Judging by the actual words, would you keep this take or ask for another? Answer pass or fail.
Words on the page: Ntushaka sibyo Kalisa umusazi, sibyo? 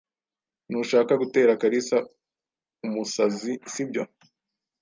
fail